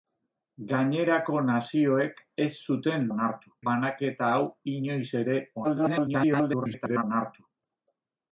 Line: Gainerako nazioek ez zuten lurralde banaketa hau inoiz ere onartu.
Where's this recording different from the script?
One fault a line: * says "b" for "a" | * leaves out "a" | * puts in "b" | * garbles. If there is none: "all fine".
* says "onartu" for "lurralde"
* garbles